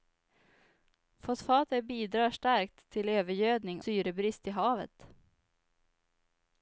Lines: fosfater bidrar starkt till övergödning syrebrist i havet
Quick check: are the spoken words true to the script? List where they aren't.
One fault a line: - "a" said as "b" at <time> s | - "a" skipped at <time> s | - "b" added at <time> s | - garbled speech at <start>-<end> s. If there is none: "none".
none